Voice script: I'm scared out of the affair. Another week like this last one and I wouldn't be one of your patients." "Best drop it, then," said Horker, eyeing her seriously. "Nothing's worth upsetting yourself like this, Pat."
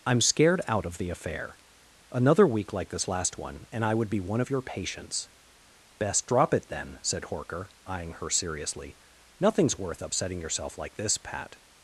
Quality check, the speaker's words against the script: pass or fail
fail